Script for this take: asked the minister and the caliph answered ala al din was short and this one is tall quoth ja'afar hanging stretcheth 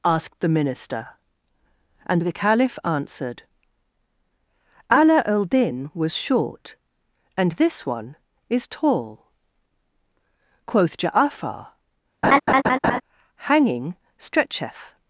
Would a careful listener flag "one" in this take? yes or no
no